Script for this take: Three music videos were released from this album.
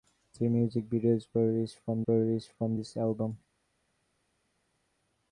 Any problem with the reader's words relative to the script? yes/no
yes